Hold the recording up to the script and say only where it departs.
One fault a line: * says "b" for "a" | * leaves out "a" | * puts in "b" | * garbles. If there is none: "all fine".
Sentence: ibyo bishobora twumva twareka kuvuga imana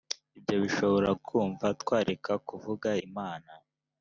all fine